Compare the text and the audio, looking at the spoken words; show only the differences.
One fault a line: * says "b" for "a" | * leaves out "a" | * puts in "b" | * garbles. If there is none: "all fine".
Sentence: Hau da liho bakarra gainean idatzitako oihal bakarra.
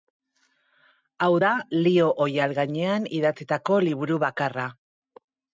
* says "oihal" for "bakarra"
* says "liburu" for "oihal"